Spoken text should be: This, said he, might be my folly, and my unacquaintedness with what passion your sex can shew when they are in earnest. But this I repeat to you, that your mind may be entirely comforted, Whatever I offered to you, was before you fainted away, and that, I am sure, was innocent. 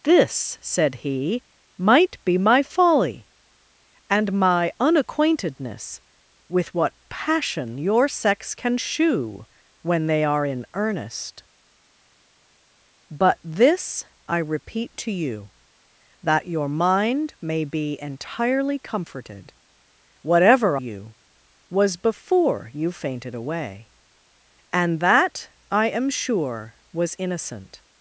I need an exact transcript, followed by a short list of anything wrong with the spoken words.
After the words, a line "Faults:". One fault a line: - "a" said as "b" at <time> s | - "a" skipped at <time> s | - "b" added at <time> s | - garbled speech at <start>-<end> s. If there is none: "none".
This, said he, might be my folly, and my unacquaintedness with what passion your sex can shew when they are in earnest. But this I repeat to you, that your mind may be entirely comforted, Whatever you, was before you fainted away, and that, I am sure, was innocent.
Faults:
- "I offered to" skipped at 20.8 s